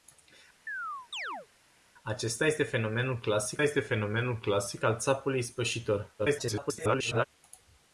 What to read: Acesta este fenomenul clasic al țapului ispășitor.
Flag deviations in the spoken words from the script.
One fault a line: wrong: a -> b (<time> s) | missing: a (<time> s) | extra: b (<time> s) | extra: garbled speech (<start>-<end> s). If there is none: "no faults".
extra: este fenomenul clasic (3.6 s)
extra: garbled speech (6.2-7.2 s)